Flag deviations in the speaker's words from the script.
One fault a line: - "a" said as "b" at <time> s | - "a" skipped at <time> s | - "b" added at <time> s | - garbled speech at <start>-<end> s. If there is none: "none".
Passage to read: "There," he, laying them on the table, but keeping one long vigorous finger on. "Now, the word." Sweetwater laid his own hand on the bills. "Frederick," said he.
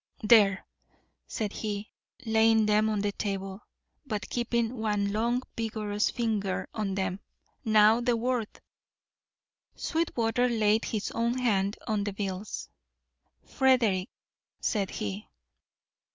- "said" added at 1.3 s
- "them" added at 6.9 s